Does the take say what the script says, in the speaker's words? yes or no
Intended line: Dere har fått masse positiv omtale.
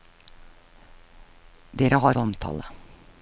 no